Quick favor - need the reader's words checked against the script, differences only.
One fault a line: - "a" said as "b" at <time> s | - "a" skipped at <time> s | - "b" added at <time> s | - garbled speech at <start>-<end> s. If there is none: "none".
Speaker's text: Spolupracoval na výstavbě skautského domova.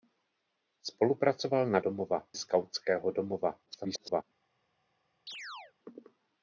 - "výstavbě" said as "domova" at 1.8 s
- garbled speech at 3.7-4.2 s